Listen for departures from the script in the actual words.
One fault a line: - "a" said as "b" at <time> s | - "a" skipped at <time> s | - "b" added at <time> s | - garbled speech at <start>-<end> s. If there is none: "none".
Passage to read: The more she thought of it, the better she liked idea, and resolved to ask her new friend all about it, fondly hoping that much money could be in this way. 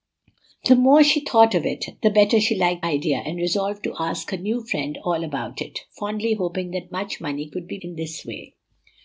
none